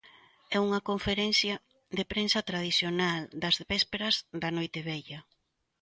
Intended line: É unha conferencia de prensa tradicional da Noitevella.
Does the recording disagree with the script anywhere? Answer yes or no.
yes